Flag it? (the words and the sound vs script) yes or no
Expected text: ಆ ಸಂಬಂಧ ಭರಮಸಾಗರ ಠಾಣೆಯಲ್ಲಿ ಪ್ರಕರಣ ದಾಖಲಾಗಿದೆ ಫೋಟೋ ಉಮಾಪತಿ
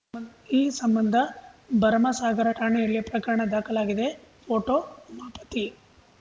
yes